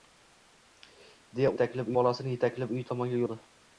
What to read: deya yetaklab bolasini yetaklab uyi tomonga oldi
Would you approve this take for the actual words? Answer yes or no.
yes